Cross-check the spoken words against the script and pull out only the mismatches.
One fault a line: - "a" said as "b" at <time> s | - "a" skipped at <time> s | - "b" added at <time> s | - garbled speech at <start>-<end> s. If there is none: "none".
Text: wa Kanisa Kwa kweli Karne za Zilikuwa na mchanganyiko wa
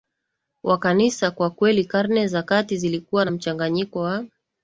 - "Kati" added at 2.4 s